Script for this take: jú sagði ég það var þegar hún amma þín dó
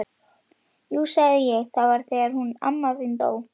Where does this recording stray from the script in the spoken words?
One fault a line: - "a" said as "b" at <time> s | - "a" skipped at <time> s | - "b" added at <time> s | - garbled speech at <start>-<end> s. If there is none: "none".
none